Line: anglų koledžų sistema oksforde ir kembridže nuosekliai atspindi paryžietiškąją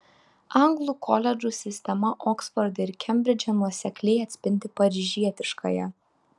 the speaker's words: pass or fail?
pass